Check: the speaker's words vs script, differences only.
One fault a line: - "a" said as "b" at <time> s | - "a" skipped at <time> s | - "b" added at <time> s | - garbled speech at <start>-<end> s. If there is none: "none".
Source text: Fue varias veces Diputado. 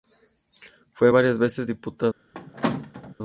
none